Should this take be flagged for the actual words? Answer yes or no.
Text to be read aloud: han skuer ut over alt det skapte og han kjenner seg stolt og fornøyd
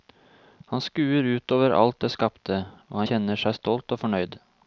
yes